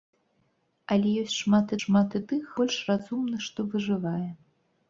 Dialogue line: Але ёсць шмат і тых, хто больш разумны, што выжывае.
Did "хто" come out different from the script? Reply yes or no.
yes